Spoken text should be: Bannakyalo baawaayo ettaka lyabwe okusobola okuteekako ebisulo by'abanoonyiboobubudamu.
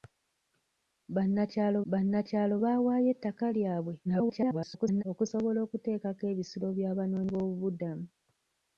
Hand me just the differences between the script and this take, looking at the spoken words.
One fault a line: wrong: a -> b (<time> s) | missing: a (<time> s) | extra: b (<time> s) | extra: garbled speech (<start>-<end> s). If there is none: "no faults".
extra: bannakyalo (1.9 s)
extra: garbled speech (4.0-5.0 s)